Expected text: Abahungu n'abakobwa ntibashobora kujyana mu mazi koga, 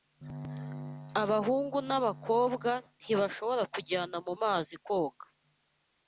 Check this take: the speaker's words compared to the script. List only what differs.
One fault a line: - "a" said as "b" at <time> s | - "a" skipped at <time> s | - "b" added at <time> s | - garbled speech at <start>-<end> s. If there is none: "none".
none